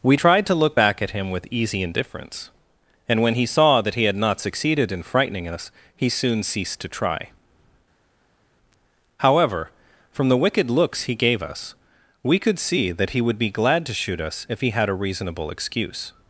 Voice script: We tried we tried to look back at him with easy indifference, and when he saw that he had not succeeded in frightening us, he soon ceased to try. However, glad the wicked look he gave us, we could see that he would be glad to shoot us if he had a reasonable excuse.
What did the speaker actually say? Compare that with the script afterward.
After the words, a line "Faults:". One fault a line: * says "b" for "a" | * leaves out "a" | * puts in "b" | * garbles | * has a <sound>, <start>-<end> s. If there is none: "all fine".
We tried to look back at him with easy indifference, and when he saw that he had not succeeded in frightening us, he soon ceased to try. However, from the wicked looks he gave us, we could see that he would be glad to shoot us if he had a reasonable excuse.
Faults:
* leaves out "we tried"
* says "from" for "glad"
* says "looks" for "look"